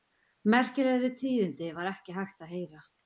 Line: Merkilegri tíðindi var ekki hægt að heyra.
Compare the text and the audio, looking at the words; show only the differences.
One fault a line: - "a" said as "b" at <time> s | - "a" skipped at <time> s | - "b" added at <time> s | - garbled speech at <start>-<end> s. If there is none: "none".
none